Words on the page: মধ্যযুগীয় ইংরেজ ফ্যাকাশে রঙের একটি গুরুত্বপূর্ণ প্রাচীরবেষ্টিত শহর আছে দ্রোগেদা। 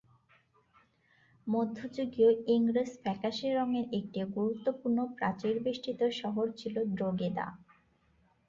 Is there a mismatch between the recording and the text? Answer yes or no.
yes